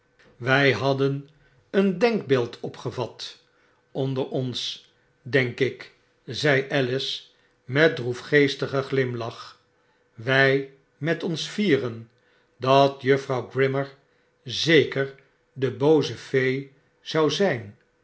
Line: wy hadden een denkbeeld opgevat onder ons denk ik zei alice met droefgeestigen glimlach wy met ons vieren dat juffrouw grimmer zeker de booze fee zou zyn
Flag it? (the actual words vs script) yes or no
no